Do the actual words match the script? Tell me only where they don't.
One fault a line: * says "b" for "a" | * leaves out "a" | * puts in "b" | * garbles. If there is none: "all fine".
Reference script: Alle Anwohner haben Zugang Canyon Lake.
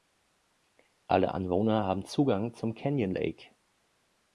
* puts in "zum"